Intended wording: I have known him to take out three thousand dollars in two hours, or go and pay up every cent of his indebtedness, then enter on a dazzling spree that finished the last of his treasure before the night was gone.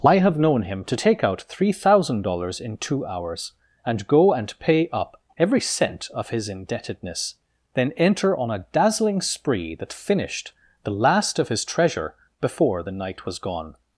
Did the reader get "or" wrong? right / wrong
wrong